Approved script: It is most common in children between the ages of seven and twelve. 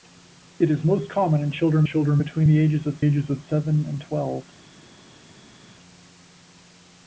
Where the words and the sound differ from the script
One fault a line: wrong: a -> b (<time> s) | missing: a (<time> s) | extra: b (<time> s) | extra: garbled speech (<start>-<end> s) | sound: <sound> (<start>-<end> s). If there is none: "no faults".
extra: children (1.8 s)
extra: ages of (3.0 s)